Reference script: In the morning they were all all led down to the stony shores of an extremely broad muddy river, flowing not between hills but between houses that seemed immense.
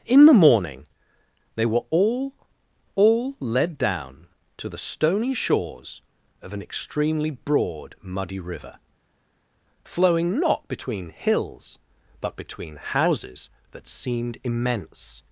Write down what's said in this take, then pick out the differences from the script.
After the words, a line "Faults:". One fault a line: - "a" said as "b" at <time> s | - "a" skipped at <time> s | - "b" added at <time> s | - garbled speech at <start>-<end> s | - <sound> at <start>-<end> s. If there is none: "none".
In the morning they were all all led down to the stony shores of an extremely broad muddy river, flowing not between hills but between houses that seemed immense.
Faults:
none